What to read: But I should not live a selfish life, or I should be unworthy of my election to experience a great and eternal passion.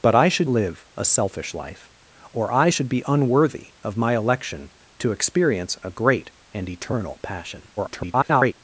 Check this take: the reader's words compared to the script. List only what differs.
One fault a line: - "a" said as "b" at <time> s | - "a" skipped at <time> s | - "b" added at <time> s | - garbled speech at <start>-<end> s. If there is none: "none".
- "not" skipped at 0.5 s
- garbled speech at 7.8-8.5 s